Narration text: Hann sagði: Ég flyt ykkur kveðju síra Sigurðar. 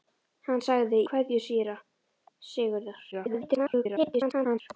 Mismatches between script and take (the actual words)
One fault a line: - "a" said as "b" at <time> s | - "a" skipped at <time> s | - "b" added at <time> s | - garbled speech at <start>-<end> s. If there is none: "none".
- "Ég flyt ykkur" skipped at 1.0 s
- garbled speech at 3.1-4.6 s